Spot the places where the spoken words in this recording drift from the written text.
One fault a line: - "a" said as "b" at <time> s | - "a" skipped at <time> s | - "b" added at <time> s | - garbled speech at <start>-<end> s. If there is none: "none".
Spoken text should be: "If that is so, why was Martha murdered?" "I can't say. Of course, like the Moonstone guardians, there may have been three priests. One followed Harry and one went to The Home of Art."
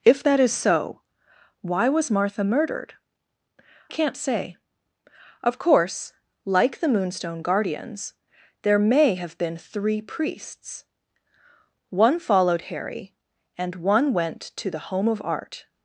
- "I" skipped at 3.0 s